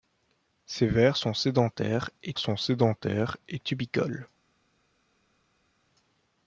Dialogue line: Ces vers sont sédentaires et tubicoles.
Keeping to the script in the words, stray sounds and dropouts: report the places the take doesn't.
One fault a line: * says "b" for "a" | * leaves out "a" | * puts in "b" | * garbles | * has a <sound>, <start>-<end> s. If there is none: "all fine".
* puts in "sont sédentaires et"